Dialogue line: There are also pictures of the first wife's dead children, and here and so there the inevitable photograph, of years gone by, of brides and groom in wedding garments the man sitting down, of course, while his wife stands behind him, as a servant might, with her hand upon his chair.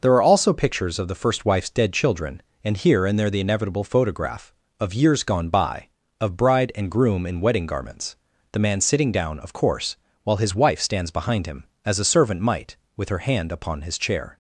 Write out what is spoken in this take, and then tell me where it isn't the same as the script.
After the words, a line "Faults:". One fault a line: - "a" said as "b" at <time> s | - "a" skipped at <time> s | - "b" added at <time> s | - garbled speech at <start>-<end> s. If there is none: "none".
There are also pictures of the first wife's dead children, and here and there the inevitable photograph, of years gone by, of bride and groom in wedding garments the man sitting down, of course, while his wife stands behind him, as a servant might, with her hand upon his chair.
Faults:
- "so" skipped at 3.2 s
- "brides" said as "bride" at 6.4 s